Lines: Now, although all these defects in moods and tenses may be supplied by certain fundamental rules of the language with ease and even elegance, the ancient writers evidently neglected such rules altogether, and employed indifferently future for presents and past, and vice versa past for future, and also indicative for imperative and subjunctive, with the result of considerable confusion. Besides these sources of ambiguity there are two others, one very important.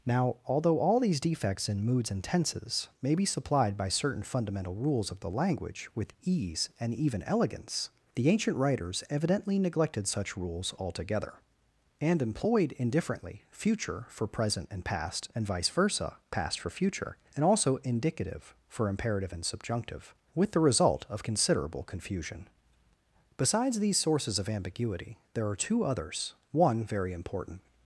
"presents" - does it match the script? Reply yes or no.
no